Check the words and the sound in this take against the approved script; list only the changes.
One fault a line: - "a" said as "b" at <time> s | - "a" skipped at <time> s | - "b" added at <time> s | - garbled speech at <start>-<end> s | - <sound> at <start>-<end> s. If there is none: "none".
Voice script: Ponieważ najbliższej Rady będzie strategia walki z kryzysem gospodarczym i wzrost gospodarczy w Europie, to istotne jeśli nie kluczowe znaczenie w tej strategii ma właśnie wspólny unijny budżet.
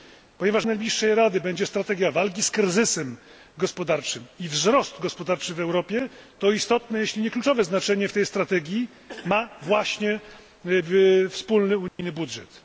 - dropout at 11.9-12.0 s